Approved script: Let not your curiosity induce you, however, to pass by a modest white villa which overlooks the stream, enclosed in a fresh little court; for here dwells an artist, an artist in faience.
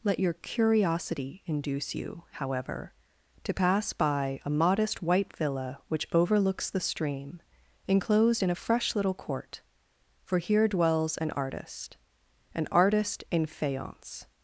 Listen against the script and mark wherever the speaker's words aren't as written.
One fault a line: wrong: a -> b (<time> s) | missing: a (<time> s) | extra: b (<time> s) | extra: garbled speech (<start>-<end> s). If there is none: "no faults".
missing: not (0.2 s)